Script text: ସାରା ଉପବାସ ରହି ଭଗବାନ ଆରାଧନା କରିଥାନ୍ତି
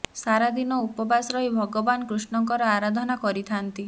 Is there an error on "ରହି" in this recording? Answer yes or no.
no